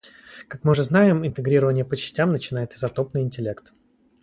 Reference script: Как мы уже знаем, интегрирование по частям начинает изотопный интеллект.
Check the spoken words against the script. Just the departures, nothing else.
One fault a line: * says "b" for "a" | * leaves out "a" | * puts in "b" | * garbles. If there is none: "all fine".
all fine